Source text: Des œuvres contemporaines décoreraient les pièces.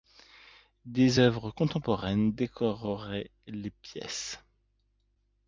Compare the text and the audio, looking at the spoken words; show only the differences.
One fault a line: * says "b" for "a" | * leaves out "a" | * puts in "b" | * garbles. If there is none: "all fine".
all fine